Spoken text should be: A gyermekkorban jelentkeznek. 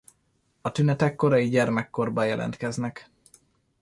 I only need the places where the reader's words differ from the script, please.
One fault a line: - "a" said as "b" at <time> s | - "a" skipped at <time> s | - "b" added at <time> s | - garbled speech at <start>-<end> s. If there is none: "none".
- "tünetek korai" added at 0.7 s